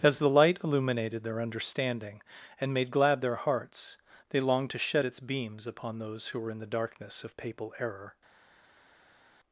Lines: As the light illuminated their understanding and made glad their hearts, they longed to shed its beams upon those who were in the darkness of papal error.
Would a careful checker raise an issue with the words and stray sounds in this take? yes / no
no